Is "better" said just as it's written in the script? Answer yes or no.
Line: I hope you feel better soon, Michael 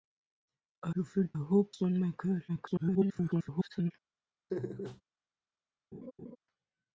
no